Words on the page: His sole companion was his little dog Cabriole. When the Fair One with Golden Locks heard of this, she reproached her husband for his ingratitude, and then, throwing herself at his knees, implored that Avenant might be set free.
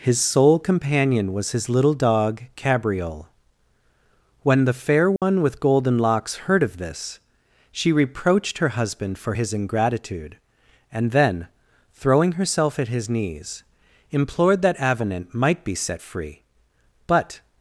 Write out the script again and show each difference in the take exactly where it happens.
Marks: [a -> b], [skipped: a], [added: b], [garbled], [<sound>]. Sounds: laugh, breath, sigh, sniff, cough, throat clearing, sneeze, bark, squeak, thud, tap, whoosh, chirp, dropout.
His sole companion was his little dog Cabriole. When the Fair One [dropout] with Golden Locks heard of this, she reproached her husband for his ingratitude, and then, throwing herself at his knees, implored that Avenant might be set free. [added: But]